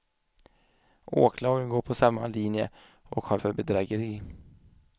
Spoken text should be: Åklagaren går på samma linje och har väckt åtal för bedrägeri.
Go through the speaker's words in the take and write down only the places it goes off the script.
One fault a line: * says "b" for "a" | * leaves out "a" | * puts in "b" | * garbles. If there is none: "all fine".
* leaves out "väckt åtal"